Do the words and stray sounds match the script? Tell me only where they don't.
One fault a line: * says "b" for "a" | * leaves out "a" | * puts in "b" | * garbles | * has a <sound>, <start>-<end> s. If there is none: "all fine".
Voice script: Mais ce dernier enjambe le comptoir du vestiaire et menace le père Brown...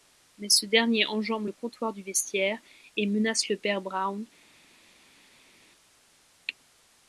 all fine